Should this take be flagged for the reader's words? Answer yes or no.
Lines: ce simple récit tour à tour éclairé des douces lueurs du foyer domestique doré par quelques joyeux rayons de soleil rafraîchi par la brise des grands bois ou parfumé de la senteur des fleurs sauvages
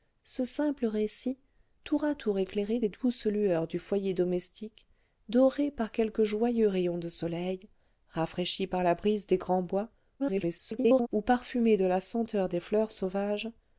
yes